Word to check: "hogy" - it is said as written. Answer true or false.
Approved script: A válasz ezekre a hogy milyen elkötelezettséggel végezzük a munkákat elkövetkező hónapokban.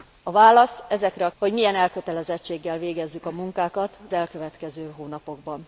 true